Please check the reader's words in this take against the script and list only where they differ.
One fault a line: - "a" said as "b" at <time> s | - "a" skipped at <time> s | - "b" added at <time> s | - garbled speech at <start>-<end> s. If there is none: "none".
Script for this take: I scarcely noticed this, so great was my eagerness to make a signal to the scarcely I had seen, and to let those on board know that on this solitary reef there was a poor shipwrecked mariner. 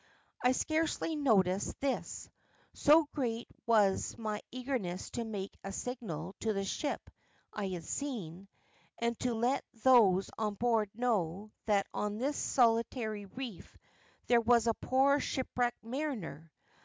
- "scarcely" said as "ship" at 6.7 s